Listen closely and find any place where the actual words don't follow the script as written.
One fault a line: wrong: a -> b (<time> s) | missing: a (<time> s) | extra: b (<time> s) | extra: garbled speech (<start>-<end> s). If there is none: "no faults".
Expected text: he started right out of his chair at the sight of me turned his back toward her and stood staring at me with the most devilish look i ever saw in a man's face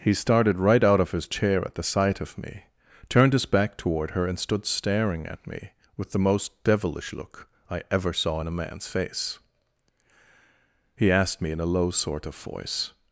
extra: he asked me in a low sort of voice (11.0 s)